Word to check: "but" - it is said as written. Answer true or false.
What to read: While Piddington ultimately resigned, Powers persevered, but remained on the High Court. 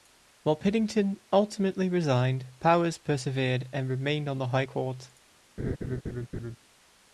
false